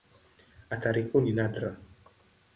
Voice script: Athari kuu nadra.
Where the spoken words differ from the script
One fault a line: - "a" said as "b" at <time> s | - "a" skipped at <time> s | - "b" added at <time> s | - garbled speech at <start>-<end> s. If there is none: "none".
- "ni" added at 1.2 s